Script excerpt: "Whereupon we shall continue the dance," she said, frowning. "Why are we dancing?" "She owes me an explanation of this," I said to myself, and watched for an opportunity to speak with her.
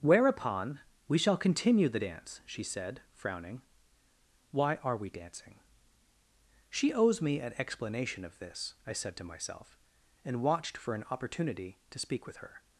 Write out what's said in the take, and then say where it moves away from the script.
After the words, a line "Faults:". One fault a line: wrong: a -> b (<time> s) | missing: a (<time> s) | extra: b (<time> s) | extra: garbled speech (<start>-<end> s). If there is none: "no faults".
"Whereupon we shall continue the dance," she said, frowning. "Why are we dancing?" "She owes me an explanation of this," I said to myself, and watched for an opportunity to speak with her.
Faults:
no faults